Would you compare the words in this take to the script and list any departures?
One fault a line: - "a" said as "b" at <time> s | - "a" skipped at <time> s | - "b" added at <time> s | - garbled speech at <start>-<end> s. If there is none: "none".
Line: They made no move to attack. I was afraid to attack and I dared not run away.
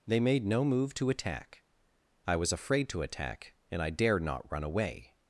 none